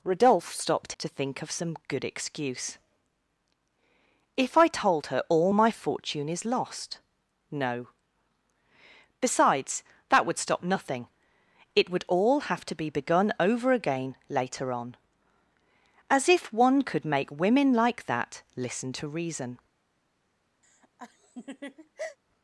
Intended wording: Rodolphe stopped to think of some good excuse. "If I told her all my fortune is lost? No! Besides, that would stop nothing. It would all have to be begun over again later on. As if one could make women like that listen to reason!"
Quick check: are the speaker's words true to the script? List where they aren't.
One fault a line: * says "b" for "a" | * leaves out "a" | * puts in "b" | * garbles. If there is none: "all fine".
all fine